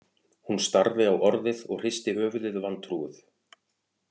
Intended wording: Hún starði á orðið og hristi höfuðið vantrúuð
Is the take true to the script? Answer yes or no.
yes